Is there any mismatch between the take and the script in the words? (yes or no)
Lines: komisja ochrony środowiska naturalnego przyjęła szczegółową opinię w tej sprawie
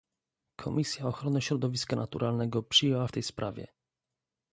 yes